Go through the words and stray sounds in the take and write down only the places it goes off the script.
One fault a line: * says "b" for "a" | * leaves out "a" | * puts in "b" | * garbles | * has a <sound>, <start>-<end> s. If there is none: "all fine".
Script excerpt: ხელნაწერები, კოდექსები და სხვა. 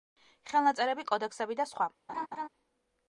* has a laugh, 2.1-2.5 s